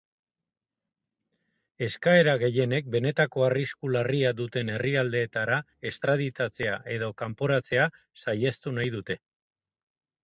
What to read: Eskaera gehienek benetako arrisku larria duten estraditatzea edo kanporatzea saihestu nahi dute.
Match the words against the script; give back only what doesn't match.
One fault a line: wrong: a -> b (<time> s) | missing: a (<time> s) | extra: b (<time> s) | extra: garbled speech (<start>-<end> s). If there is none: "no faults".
extra: herrialdeetara (4.8 s)